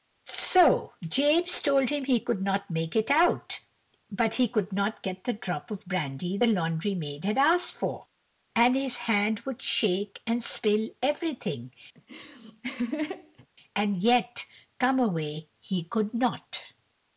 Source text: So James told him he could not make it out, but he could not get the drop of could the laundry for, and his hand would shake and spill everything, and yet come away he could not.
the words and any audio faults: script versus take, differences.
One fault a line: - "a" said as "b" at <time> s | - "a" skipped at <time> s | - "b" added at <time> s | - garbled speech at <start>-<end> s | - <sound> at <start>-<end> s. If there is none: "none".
- "could" said as "brandy" at 5.8 s
- "maid had asked" added at 6.9 s
- laugh at 12.0-13.5 s